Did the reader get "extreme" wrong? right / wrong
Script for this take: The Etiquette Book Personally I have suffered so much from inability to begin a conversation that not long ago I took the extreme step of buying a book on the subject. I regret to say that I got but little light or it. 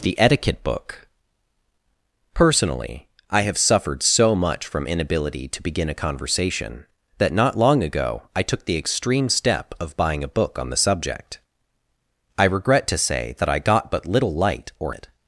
right